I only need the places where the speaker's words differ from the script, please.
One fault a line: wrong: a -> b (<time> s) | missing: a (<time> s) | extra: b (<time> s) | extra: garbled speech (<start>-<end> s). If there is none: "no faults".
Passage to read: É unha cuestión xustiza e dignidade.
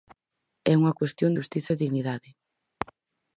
no faults